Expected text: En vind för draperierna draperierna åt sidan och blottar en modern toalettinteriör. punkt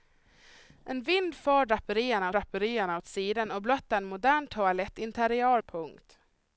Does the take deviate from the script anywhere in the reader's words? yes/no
no